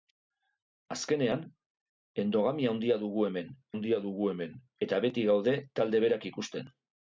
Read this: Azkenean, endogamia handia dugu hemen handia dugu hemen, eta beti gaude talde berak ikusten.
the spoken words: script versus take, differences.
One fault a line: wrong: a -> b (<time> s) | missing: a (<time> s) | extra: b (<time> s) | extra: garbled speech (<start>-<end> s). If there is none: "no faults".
no faults